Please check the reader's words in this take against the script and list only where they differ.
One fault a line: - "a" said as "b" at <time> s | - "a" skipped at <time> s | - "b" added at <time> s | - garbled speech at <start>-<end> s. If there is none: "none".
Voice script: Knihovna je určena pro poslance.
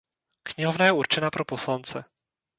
none